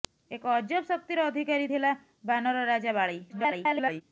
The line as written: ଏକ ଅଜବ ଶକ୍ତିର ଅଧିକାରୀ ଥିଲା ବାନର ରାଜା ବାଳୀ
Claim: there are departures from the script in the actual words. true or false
true